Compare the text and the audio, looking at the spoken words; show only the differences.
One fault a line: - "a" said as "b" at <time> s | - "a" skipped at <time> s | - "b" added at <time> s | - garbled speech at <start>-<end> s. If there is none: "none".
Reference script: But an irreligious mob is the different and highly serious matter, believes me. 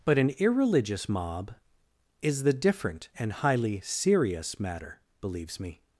none